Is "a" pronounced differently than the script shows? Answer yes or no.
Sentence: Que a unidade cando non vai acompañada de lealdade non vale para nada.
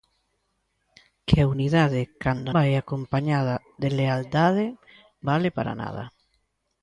no